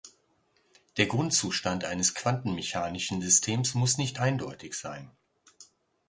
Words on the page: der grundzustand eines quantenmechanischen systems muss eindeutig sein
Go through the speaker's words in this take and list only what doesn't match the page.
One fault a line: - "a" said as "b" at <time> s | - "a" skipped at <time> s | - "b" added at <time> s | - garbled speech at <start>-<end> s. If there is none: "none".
- "nicht" added at 4.0 s